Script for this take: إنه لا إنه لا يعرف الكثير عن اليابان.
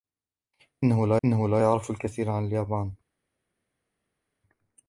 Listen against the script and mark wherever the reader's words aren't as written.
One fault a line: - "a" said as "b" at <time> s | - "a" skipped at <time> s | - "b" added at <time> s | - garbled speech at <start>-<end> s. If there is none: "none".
none